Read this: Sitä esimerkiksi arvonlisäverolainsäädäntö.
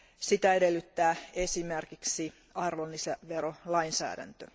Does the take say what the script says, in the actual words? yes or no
no